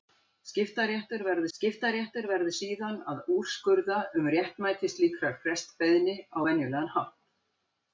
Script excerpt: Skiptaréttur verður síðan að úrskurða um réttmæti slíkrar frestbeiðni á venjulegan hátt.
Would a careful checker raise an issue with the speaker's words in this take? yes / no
yes